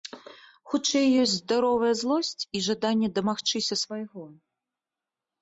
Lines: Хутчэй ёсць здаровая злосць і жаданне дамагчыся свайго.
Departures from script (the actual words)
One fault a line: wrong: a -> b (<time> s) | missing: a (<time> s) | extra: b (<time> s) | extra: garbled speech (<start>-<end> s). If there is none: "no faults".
no faults